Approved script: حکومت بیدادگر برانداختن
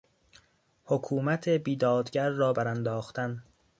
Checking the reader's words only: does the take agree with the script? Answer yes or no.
no